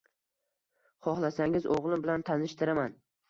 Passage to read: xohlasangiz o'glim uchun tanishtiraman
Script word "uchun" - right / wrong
wrong